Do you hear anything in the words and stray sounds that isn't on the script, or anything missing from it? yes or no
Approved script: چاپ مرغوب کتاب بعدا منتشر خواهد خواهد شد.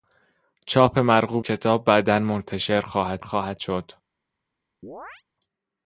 yes